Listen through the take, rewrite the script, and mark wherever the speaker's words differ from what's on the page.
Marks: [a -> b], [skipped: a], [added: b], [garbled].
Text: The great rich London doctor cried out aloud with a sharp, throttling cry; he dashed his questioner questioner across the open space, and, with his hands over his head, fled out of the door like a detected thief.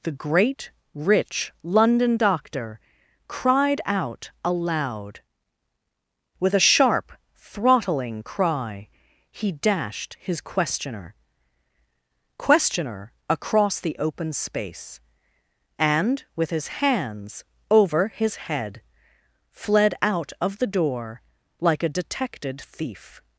The great rich London doctor cried out aloud with a sharp, throttling cry; he dashed his questioner questioner across the open space, and, with his hands over his head, fled out of the door like a detected thief.